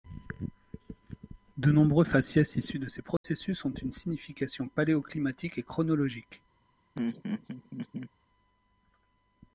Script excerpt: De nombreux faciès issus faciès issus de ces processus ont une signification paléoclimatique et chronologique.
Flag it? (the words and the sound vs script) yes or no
yes